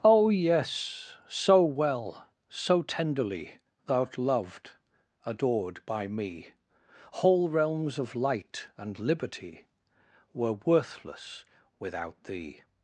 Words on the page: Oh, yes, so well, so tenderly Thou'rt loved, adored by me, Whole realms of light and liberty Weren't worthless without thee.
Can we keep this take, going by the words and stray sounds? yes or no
no